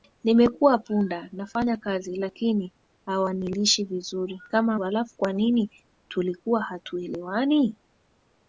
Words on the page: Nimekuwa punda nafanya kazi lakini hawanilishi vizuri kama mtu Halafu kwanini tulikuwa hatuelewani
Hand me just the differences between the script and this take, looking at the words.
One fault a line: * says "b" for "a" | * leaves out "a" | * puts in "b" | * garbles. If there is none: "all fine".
* leaves out "mtu"